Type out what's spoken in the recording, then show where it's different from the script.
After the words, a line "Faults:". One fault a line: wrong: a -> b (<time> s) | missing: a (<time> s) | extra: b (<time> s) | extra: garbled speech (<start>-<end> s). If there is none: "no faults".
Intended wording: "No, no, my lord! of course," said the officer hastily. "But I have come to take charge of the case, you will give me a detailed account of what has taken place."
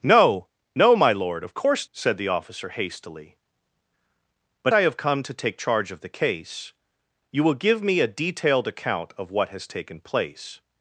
"No, no, my lord! of course," said the officer hastily. "But I have come to take charge of the case, you will give me a detailed account of what has taken place."
Faults:
no faults